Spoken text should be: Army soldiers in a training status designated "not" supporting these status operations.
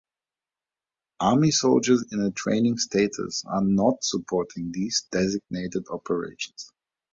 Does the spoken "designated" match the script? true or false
false